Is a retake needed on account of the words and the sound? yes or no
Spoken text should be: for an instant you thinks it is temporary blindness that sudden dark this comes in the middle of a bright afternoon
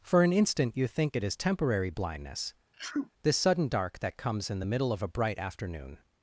yes